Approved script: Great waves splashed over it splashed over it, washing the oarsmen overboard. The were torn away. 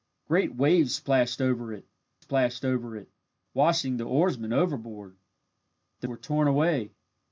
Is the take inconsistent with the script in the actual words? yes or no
no